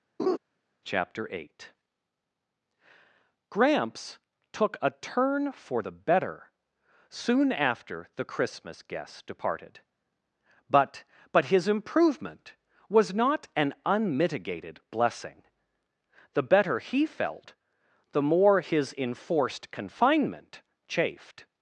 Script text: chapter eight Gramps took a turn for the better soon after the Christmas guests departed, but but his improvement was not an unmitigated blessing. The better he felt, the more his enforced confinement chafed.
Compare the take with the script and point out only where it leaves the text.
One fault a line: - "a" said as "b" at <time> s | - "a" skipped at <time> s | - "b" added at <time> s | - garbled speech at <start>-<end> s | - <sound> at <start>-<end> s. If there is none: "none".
- laugh at 0.2-0.4 s